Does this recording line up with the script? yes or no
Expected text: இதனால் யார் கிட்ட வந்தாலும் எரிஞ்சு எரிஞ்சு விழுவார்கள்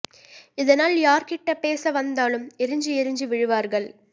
no